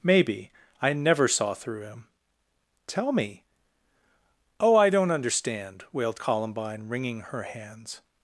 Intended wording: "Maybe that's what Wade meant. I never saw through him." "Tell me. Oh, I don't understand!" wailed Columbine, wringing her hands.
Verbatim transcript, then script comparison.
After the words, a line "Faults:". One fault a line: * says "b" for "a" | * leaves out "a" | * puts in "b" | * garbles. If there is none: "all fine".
"Maybe. I never saw through him." "Tell me. Oh, I don't understand!" wailed Columbine, wringing her hands.
Faults:
* leaves out "that's what Wade meant"